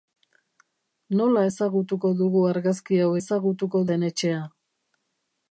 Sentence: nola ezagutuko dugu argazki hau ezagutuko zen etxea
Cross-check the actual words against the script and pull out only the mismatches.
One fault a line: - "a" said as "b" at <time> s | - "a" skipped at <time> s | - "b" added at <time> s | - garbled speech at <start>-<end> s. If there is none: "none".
none